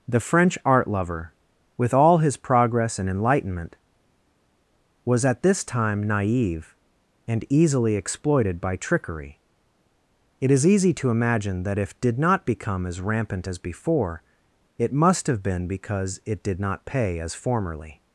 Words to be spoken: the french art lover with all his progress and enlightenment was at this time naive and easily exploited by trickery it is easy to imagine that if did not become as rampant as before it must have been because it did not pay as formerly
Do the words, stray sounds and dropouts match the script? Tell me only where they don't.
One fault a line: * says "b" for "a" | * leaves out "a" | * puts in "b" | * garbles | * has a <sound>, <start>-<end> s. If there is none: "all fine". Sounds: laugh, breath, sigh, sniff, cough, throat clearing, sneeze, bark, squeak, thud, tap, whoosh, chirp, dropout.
all fine